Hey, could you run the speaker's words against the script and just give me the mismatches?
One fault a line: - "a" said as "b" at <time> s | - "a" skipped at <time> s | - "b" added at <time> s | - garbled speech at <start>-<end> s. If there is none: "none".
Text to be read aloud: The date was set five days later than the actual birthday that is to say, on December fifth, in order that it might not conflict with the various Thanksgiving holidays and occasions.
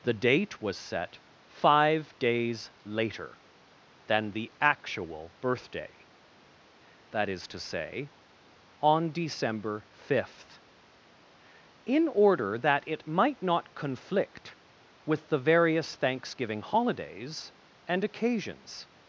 none